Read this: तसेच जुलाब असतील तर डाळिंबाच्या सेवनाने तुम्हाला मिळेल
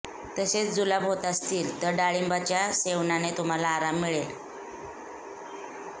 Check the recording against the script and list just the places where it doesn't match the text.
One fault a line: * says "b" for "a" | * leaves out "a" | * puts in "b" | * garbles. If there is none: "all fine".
* puts in "होत"
* puts in "आराम"